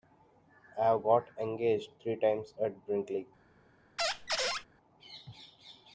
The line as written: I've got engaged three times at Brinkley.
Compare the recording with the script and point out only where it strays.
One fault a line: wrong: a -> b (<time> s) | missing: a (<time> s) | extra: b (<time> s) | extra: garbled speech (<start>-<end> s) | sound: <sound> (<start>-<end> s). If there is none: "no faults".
sound: squeak (4.0-4.7 s)